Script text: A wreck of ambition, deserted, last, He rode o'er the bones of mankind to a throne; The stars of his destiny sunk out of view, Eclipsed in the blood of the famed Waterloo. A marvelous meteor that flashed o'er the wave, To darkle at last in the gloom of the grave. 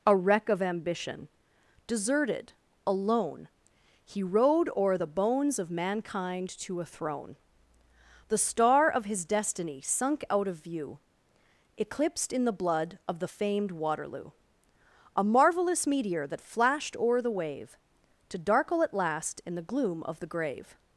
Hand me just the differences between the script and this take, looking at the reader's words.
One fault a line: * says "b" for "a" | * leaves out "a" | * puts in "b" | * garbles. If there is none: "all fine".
* says "alone" for "last"
* says "star" for "stars"